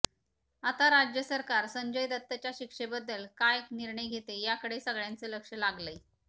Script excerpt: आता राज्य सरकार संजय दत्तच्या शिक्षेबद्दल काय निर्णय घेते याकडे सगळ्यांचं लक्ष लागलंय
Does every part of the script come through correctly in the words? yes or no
yes